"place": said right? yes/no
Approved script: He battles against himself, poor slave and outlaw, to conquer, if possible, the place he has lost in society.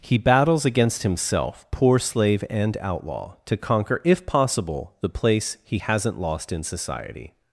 yes